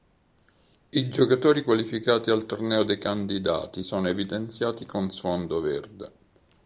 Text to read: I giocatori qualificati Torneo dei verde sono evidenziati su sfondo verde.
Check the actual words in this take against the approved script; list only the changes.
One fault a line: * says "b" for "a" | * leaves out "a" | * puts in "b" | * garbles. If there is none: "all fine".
* puts in "al"
* says "candidati" for "verde"
* says "con" for "su"